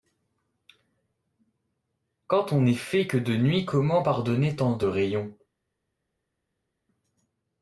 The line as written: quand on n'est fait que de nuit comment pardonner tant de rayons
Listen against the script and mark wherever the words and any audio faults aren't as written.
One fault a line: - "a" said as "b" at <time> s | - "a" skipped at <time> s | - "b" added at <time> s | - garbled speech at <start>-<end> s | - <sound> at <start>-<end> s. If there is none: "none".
none